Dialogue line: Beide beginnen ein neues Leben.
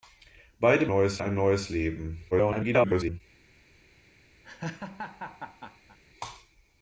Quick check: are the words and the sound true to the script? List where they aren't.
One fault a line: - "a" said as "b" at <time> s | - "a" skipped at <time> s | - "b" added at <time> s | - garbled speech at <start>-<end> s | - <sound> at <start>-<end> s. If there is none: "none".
- "beginnen" said as "neues" at 0.9 s
- garbled speech at 2.3-3.2 s
- laugh at 4.4-6.0 s